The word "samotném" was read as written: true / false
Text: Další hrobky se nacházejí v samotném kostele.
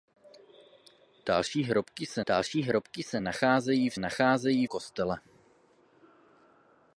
false